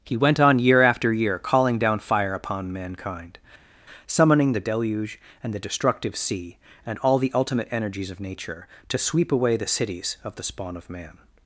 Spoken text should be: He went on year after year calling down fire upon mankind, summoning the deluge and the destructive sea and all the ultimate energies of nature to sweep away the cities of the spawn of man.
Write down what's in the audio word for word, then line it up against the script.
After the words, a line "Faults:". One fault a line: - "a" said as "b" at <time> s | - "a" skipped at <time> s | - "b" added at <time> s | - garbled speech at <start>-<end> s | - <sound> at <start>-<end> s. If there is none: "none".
He went on year after year calling down fire upon mankind, summoning the deluge and the destructive sea and all the ultimate energies of nature to sweep away the cities of the spawn of man.
Faults:
none